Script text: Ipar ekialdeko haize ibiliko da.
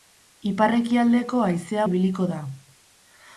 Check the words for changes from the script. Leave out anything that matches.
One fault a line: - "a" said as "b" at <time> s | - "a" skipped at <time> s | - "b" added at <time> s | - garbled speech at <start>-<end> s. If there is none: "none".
none